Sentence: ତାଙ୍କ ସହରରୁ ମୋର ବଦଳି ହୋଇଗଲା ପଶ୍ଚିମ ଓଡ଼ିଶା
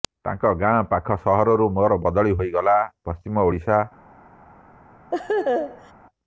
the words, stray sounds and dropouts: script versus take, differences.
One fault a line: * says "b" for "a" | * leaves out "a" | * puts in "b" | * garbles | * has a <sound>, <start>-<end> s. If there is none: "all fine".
* puts in "ଗାଁ ପାଖ"
* has a laugh, 5.1-5.9 s